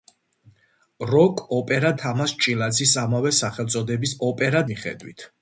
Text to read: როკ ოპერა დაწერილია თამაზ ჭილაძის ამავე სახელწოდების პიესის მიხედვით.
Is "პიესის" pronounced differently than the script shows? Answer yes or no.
yes